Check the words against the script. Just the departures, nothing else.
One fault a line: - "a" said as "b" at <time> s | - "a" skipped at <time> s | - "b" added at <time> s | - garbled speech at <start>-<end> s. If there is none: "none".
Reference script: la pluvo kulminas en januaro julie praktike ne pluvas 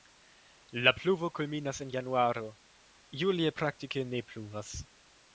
none